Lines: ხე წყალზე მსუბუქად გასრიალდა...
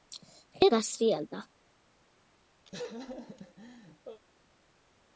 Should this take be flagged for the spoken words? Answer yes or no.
yes